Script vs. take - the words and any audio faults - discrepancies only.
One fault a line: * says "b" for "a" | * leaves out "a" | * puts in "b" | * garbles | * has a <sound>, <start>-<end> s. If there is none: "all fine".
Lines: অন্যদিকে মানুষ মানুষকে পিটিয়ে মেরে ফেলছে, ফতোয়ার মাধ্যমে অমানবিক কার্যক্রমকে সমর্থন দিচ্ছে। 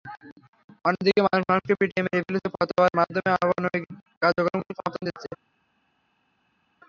all fine